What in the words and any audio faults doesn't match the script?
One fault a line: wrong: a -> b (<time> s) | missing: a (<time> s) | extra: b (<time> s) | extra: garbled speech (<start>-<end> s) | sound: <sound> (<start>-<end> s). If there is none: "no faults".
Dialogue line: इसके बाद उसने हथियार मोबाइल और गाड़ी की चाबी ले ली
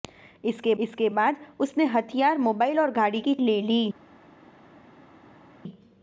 extra: इसके (0.8 s)
missing: चाबी (3.3 s)